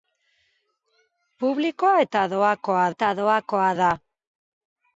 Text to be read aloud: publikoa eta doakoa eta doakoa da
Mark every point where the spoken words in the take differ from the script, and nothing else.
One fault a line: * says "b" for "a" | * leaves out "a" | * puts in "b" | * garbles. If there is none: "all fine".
all fine